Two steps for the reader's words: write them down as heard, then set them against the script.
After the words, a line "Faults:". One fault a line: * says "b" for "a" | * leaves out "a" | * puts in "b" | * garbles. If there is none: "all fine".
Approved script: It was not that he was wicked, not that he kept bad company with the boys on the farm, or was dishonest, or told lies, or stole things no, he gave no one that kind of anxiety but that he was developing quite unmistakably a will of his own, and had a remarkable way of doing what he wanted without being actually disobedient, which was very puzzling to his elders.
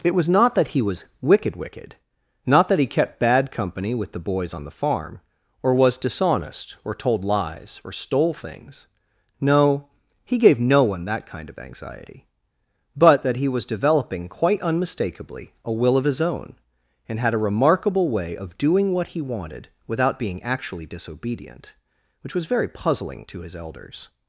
It was not that he was wicked wicked, not that he kept bad company with the boys on the farm, or was dishonest, or told lies, or stole things no, he gave no one that kind of anxiety but that he was developing quite unmistakably a will of his own, and had a remarkable way of doing what he wanted without being actually disobedient, which was very puzzling to his elders.
Faults:
* puts in "wicked"